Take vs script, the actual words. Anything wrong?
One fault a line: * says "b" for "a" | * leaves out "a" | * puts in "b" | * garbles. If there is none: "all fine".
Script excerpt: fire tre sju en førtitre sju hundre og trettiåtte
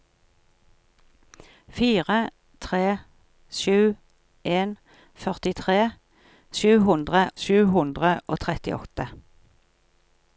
* puts in "sju hundre"